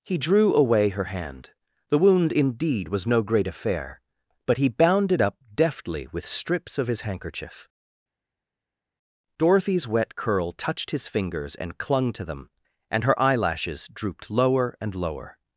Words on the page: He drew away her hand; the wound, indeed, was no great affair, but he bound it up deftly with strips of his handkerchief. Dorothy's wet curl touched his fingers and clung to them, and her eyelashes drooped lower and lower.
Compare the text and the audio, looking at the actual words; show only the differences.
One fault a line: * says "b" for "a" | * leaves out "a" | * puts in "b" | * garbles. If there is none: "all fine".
all fine